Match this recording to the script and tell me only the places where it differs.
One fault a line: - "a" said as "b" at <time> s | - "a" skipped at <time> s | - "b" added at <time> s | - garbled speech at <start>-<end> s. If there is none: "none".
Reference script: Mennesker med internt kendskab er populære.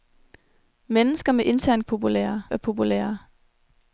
- "kendskab" said as "populære" at 1.8 s